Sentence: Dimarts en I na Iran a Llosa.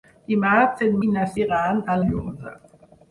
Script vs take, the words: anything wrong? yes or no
no